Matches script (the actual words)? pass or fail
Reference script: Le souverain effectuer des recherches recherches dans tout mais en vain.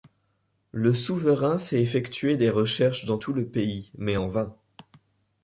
fail